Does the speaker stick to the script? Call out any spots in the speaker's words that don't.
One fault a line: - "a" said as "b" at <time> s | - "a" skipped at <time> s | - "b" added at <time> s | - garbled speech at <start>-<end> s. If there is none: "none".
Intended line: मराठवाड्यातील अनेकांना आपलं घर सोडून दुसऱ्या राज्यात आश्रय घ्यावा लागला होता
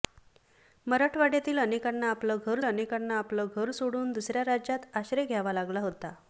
- "अनेकांना आपलं घर" added at 2.6 s